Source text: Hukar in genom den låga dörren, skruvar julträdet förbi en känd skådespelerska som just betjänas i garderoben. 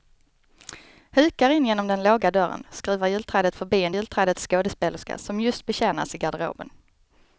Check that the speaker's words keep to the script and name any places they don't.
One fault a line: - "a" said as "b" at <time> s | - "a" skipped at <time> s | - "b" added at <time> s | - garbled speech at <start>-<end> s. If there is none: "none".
- "känd" said as "julträdet" at 3.9 s